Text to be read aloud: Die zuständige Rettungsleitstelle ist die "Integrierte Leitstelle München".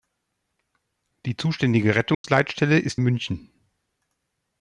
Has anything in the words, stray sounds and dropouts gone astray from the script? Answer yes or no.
yes